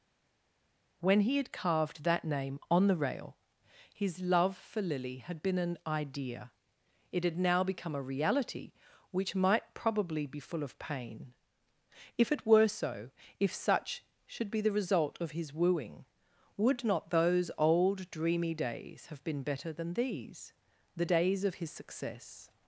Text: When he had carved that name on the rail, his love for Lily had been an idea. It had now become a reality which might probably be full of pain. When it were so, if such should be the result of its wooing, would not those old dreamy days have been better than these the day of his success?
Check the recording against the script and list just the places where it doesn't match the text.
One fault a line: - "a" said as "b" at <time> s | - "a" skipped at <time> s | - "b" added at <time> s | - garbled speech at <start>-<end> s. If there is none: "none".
- "When" said as "If" at 12.2 s
- "its" said as "his" at 15.3 s
- "day" said as "days" at 21.0 s